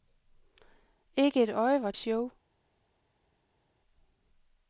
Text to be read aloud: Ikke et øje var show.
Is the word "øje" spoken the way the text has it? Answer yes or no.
yes